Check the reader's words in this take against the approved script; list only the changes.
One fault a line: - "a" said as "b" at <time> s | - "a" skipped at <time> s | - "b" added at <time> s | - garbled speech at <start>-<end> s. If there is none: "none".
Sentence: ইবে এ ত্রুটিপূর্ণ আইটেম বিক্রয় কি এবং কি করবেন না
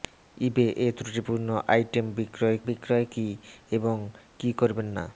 - "বিক্রয়" added at 2.7 s